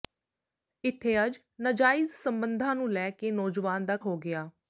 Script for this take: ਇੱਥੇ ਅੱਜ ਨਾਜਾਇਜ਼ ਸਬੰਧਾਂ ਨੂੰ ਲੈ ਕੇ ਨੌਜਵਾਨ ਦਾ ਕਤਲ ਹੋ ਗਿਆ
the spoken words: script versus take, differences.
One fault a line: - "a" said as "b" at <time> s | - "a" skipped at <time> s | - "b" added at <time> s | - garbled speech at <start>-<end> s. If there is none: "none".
- "ਕਤਲ" skipped at 4.0 s